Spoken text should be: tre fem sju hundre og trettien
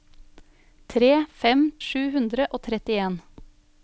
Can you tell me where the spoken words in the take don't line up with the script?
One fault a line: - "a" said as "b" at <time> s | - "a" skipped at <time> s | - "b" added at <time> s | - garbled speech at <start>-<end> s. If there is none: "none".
none